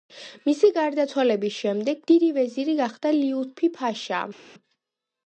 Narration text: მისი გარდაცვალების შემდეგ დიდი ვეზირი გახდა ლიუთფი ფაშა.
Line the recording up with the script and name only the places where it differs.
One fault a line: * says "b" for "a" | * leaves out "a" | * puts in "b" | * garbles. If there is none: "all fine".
all fine